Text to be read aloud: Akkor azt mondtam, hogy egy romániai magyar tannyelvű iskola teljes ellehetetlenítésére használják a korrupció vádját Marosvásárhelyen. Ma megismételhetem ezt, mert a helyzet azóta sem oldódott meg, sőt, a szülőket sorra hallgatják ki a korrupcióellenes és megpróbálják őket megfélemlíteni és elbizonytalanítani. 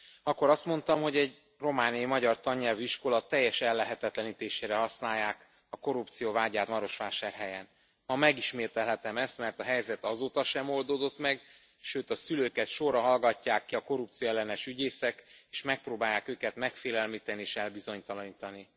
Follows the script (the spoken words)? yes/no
no